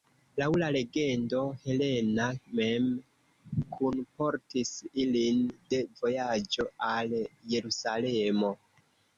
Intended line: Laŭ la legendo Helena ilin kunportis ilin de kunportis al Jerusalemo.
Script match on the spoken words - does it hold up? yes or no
no